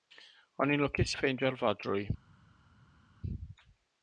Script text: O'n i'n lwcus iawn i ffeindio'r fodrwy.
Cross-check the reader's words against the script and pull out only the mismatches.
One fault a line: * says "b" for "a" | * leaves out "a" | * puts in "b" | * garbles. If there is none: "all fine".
* leaves out "iawn"